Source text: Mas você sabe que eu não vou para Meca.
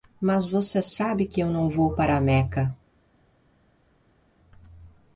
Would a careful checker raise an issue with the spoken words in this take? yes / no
no